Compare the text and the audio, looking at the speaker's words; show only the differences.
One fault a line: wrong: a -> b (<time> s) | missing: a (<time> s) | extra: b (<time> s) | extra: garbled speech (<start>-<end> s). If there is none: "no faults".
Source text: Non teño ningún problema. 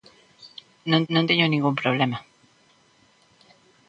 extra: non (1.1 s)